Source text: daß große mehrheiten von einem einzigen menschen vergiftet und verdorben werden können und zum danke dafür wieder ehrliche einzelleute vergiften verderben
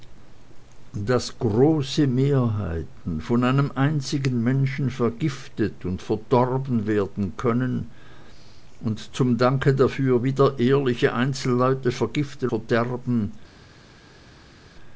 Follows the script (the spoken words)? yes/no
yes